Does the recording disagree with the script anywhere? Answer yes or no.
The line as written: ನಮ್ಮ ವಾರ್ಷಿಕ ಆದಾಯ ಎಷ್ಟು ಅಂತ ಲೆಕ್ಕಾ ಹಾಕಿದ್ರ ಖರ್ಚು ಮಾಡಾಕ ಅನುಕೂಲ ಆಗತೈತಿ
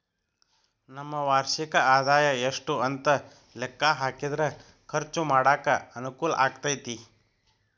no